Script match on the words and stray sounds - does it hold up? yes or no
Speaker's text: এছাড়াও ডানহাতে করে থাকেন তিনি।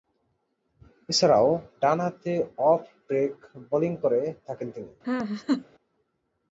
no